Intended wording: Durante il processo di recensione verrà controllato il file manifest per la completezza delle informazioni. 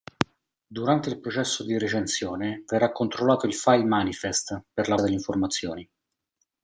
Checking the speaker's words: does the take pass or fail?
fail